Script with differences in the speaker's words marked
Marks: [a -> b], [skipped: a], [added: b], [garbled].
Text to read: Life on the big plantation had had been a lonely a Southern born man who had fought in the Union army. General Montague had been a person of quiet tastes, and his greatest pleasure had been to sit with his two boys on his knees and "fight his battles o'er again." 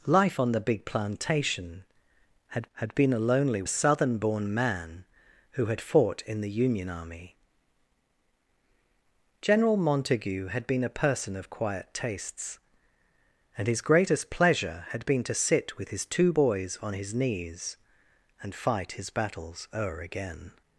Life on the big plantation had had been a lonely a Southern born man who had fought in the Union army. General Montague had been a person of quiet tastes, and his greatest pleasure had been to sit with his two boys on his knees and "fight his battles o'er again."